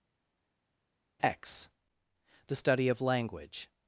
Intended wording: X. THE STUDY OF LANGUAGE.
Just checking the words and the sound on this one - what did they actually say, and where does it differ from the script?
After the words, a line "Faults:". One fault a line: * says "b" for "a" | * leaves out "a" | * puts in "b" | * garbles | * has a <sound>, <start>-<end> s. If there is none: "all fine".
X. THE STUDY OF LANGUAGE.
Faults:
all fine